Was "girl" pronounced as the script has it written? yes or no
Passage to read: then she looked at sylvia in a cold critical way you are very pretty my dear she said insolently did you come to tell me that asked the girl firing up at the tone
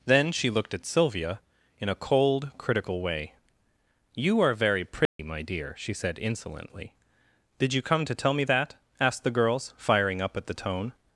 no